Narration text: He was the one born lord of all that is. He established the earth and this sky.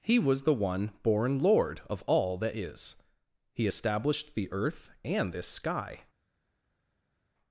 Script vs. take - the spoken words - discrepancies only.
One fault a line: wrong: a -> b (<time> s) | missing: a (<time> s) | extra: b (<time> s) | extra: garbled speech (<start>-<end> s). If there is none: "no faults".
no faults